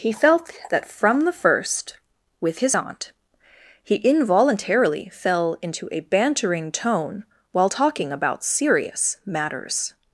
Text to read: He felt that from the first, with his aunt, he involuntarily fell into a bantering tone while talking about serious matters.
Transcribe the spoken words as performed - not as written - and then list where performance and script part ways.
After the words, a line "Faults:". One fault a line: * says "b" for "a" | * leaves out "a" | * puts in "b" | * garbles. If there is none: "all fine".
He felt that from the first, with his aunt, he involuntarily fell into a bantering tone while talking about serious matters.
Faults:
all fine